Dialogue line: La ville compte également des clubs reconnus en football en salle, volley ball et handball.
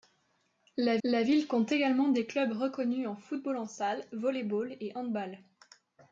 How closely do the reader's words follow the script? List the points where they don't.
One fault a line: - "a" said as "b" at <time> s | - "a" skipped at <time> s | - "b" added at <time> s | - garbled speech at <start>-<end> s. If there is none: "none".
- "la" added at 1.0 s